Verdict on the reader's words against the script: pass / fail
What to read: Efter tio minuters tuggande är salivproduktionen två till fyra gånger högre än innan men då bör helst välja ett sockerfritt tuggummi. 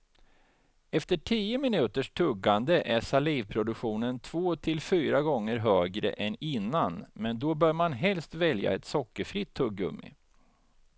fail